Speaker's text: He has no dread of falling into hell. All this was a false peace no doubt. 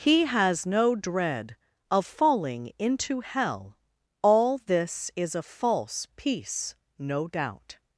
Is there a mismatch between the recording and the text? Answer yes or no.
yes